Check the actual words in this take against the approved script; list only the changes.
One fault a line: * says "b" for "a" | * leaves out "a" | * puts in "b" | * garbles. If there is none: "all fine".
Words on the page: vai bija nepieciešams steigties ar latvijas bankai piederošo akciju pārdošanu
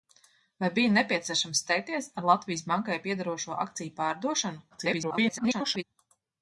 * garbles